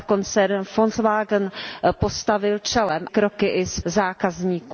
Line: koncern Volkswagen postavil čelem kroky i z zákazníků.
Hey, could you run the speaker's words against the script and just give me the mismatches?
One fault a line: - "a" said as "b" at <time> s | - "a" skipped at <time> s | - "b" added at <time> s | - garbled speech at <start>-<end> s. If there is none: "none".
none